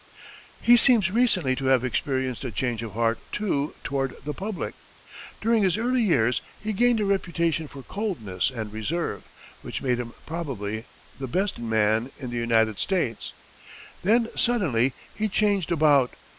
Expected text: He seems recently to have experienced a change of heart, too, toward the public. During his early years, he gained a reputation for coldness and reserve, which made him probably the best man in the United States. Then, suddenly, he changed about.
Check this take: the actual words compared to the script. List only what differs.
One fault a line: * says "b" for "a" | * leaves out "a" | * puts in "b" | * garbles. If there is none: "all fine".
all fine